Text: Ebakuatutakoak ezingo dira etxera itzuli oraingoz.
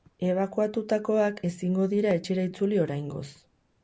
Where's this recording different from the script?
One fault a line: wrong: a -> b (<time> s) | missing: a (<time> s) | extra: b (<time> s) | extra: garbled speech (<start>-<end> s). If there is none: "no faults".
no faults